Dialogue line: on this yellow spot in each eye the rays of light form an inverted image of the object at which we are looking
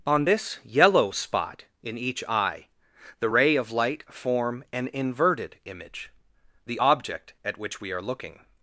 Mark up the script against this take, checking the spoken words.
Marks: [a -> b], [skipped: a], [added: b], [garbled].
on this yellow spot in each eye the [rays -> ray] of light form an inverted image [skipped: of] the object at which we are looking